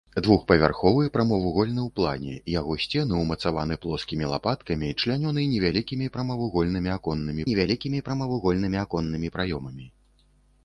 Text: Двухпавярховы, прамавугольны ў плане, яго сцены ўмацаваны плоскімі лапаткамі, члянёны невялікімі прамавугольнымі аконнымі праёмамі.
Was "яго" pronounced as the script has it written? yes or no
yes